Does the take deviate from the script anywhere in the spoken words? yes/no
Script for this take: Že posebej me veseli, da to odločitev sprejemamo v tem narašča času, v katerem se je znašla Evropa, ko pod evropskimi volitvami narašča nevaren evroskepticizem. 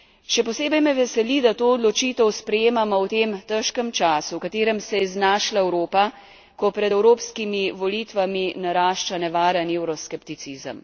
yes